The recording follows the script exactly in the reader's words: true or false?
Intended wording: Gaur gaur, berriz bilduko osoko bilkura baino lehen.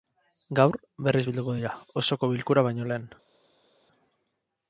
false